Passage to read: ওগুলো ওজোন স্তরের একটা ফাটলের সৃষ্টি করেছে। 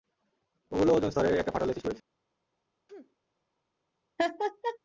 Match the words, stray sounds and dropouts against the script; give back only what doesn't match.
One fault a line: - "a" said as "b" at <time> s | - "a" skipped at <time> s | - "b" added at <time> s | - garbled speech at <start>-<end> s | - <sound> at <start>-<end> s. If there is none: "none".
- sneeze at 2.9-3.2 s
- laugh at 4.2-4.8 s